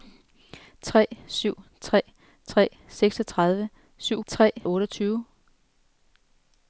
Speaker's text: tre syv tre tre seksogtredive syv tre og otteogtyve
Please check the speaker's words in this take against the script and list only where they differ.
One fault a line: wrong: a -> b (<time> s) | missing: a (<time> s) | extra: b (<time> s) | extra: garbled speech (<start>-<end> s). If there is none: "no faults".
no faults